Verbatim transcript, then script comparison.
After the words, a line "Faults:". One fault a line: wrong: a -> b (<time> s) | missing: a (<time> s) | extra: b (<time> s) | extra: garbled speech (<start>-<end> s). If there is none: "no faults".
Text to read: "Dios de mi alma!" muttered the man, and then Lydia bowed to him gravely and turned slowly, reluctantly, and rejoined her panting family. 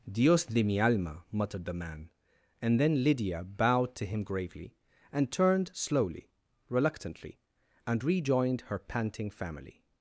"Dios de mi alma!" muttered the man, and then Lydia bowed to him gravely and turned slowly, reluctantly, and rejoined her panting family.
Faults:
no faults